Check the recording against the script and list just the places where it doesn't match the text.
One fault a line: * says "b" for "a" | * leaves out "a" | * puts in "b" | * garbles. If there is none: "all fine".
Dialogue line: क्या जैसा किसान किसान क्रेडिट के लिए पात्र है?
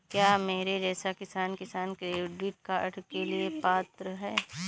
* puts in "मेरे"
* puts in "कार्ड"